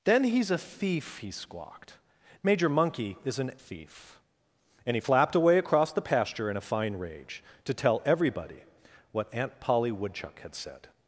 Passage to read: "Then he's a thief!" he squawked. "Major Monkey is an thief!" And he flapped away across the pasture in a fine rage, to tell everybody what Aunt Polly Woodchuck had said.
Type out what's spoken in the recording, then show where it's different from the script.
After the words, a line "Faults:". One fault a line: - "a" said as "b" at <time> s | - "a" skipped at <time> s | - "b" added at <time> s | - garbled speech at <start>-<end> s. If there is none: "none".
"Then he's a thief!" he squawked. "Major Monkey is an thief!" And he flapped away across the pasture in a fine rage, to tell everybody what Aunt Polly Woodchuck had said.
Faults:
none